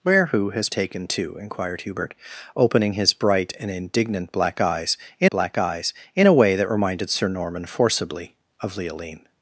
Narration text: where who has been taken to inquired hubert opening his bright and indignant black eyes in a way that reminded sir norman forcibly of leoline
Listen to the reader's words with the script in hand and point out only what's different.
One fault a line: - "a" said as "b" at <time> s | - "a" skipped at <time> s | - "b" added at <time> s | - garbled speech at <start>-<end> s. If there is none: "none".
- "been" skipped at 0.7 s
- "black eyes in" added at 5.3 s